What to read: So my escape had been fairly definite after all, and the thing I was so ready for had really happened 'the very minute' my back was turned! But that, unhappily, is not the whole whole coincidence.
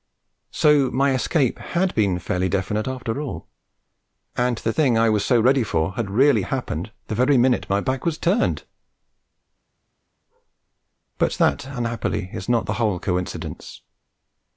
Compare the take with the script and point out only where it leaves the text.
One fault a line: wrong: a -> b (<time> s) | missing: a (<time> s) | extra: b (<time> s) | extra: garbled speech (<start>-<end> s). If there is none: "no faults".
missing: whole (13.0 s)